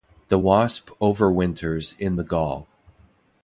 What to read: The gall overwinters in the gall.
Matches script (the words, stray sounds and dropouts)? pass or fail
fail